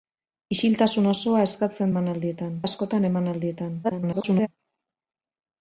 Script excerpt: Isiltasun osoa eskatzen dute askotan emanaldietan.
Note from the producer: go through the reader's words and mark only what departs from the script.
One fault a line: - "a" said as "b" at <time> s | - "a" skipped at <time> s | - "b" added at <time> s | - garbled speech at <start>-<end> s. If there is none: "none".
- "dute" said as "emanaldietan" at 1.9 s
- garbled speech at 3.8-4.5 s